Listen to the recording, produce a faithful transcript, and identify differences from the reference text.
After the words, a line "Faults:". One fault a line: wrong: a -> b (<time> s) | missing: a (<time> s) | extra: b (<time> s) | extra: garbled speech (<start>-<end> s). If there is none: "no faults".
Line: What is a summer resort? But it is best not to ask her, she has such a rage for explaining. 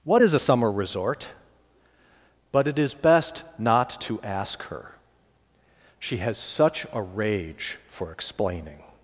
What is a summer resort? But it is best not to ask her, she has such a rage for explaining.
Faults:
no faults